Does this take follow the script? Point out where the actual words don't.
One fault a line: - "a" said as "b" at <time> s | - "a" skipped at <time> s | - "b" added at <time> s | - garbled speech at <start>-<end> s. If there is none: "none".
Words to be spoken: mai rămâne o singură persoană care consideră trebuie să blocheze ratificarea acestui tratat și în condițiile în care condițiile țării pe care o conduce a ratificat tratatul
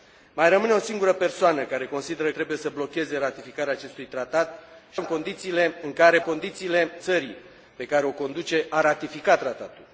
none